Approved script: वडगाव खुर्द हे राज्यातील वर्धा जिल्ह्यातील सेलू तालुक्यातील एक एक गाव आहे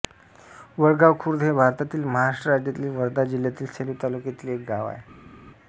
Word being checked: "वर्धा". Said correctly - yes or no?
yes